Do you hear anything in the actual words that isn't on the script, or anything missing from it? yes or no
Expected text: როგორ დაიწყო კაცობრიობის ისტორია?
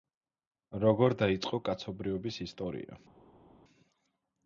no